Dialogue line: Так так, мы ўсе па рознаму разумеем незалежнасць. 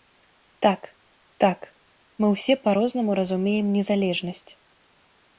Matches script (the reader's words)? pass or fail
pass